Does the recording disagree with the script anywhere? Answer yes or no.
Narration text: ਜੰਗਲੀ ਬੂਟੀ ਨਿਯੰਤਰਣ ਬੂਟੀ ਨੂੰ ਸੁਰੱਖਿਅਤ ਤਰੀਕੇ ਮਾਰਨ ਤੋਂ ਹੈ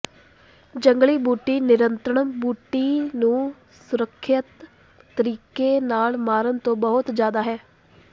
yes